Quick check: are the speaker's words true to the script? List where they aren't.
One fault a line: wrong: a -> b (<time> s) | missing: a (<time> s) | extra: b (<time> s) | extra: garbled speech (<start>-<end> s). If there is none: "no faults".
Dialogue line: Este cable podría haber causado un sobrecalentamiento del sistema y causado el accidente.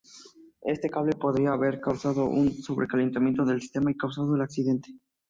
no faults